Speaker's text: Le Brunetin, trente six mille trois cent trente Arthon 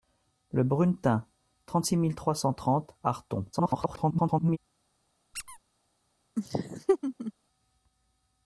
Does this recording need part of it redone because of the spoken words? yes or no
yes